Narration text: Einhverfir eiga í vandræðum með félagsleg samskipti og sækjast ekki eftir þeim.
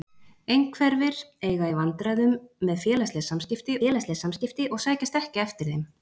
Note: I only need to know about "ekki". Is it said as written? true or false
true